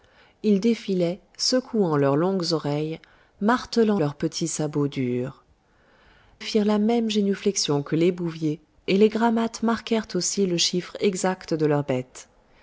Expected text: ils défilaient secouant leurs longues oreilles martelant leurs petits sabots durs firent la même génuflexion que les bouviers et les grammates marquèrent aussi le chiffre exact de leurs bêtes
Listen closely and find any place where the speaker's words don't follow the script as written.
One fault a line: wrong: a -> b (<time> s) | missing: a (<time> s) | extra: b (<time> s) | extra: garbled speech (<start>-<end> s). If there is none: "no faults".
no faults